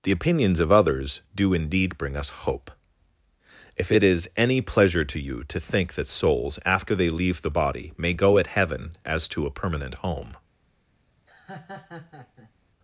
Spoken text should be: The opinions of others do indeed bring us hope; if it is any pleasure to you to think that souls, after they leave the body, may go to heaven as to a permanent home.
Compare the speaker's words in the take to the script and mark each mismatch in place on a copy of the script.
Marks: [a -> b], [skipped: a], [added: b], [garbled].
The opinions of others do indeed bring us hope; if it is any pleasure to you to think that souls, after they leave the body, may go [to -> at] heaven as to a permanent home.